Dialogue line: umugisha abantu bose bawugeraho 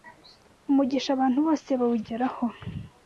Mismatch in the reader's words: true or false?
false